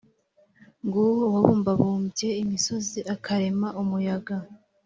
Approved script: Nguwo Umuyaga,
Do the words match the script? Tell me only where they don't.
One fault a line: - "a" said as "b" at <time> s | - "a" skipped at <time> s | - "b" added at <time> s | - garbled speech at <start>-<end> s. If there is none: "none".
- "Uwabumbabumbye imisozi akarema" added at 1.3 s